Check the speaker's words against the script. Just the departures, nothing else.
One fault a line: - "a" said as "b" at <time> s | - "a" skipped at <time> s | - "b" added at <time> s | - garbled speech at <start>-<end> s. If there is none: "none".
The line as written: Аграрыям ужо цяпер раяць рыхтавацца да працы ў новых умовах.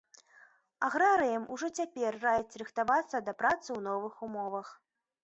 none